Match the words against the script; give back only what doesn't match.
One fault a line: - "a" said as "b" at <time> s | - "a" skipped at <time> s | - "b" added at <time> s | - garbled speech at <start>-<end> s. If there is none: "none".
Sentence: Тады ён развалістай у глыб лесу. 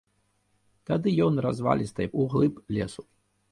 none